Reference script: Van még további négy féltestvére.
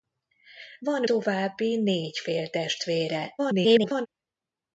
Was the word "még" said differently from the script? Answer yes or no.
yes